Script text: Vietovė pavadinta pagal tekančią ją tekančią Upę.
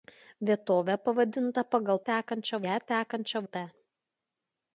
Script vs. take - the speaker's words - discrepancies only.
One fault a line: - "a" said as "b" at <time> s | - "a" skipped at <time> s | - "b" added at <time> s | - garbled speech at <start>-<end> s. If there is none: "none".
none